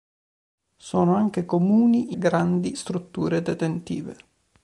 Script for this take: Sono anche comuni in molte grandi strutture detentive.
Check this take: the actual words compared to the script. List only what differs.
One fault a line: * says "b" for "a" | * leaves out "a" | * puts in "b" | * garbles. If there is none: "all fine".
* leaves out "in molte"